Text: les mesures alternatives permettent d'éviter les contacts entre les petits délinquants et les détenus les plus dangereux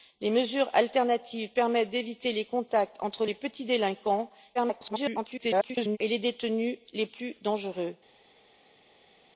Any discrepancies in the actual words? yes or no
yes